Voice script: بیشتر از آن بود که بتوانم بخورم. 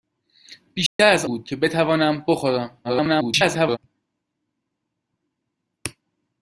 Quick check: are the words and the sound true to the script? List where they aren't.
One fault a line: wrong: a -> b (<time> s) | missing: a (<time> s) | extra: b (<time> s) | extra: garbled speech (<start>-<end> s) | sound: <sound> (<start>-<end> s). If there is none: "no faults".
sound: dropout (0.9-1.0 s)
missing: آن (1.2 s)
extra: garbled speech (2.8-3.8 s)